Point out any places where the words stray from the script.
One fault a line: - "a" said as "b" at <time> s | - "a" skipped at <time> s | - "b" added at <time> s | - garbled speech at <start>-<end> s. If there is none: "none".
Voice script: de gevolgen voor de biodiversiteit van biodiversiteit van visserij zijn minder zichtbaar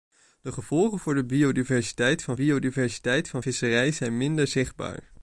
none